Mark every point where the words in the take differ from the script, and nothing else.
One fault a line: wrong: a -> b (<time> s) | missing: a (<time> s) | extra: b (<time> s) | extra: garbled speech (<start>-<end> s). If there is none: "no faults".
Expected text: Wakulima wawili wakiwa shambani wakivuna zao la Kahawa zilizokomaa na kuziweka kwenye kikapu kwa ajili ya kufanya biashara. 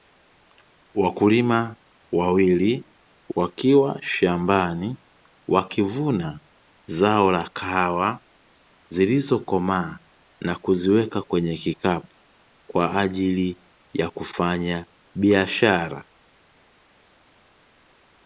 no faults